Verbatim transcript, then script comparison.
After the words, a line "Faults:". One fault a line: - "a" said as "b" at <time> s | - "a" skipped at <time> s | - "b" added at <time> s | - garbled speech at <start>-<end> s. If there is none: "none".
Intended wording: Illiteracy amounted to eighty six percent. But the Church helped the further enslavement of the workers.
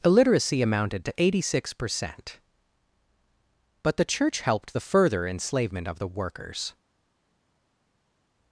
Illiteracy amounted to eighty six percent. But the Church helped the further enslavement of the workers.
Faults:
none